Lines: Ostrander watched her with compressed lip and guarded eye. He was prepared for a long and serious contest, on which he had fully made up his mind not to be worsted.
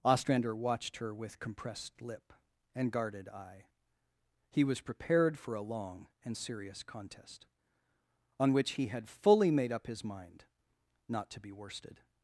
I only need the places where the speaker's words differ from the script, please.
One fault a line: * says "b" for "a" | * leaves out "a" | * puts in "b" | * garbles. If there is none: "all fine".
all fine